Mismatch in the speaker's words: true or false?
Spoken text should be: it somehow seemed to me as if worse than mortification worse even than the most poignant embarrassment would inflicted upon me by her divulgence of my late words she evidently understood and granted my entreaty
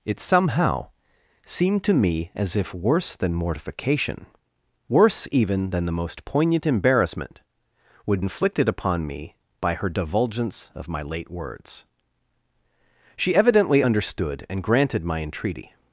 false